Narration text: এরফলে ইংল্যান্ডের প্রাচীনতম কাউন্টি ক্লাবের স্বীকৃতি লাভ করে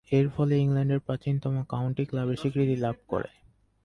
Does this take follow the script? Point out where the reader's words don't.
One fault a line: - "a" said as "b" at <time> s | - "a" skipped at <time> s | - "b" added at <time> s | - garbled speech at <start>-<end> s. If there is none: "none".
none